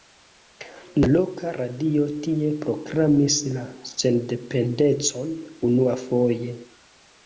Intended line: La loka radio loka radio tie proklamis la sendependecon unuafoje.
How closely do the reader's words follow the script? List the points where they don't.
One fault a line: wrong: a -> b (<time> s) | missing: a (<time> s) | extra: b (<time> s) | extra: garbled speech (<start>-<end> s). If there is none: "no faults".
missing: loka radio (2.1 s)